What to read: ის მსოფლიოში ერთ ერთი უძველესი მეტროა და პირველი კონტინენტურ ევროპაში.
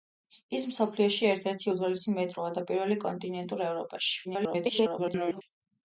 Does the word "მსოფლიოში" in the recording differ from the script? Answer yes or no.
no